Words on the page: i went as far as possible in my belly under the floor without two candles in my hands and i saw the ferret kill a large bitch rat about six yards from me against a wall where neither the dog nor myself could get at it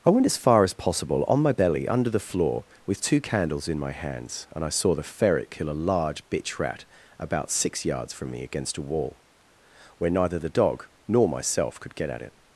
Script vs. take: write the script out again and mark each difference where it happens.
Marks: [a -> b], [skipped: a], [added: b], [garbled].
i went as far as possible [in -> on] my belly under the floor [without -> with] two candles in my hands and i saw the ferret kill a large bitch rat about six yards from me against a wall where neither the dog nor myself could get at it